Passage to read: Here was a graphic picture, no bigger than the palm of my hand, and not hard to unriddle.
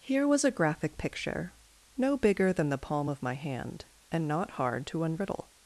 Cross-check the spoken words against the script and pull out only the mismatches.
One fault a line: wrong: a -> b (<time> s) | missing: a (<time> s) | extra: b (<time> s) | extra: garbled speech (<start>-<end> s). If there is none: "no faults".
no faults